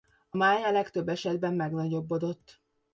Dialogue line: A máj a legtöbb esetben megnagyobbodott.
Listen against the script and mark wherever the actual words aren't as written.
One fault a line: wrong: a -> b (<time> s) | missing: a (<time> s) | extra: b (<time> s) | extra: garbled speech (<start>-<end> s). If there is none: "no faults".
no faults